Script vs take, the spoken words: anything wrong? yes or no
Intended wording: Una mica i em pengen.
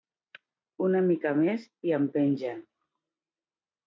yes